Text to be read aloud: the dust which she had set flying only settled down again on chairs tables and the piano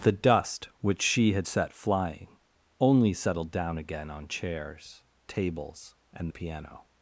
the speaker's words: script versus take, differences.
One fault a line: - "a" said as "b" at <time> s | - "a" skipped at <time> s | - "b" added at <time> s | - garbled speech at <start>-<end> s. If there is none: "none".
none